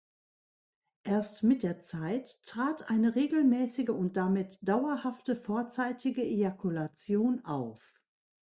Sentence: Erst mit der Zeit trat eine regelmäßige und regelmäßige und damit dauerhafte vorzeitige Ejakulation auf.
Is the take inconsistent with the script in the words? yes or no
yes